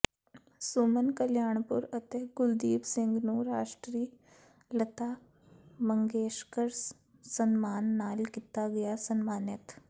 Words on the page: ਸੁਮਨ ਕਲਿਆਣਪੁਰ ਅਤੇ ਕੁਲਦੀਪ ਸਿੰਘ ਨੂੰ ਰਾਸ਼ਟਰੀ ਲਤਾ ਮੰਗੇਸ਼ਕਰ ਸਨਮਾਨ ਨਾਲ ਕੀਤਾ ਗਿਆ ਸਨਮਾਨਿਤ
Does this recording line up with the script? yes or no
yes